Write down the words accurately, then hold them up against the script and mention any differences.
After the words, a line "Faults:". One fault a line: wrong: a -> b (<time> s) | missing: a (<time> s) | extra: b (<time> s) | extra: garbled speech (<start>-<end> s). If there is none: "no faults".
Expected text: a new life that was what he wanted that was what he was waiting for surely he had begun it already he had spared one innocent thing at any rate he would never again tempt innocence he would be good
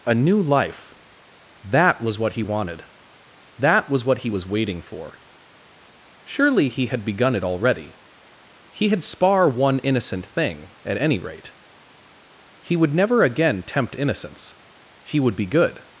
a new life that was what he wanted that was what he was waiting for surely he had begun it already he had spar one innocent thing at any rate he would never again tempt innocence he would be good
Faults:
wrong: spared -> spar (9.0 s)